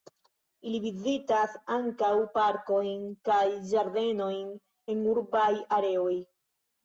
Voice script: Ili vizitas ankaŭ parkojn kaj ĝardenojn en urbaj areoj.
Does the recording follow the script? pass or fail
pass